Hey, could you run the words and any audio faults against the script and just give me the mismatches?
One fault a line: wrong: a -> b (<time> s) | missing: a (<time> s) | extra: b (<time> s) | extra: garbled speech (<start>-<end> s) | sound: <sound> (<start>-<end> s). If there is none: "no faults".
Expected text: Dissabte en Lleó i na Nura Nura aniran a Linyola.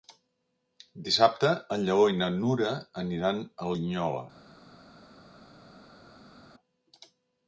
missing: Nura (2.7 s)